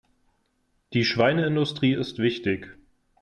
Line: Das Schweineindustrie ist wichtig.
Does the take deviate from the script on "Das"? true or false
true